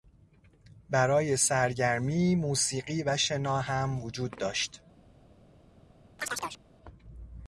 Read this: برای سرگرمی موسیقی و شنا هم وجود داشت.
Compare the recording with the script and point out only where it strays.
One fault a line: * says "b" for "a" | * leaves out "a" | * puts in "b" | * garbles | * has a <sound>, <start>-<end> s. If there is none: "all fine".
* has a chirp, 6.2-6.6 s